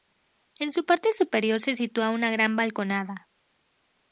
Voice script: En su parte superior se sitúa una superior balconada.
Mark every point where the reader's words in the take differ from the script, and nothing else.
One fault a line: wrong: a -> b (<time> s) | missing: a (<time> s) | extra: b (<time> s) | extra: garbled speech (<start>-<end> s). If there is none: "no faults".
wrong: superior -> gran (2.3 s)